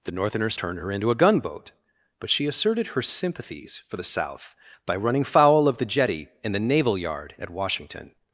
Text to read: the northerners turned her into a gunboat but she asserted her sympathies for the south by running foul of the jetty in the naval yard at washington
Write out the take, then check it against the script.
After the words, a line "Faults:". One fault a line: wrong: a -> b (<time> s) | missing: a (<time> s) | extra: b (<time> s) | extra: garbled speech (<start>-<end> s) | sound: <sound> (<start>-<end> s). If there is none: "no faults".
the northerners turned her into a gunboat but she asserted her sympathies for the south by running foul of the jetty in the naval yard at washington
Faults:
no faults